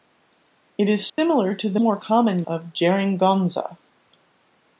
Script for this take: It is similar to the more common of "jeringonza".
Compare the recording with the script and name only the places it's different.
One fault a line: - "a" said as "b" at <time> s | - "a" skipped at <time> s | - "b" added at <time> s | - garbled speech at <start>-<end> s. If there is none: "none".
none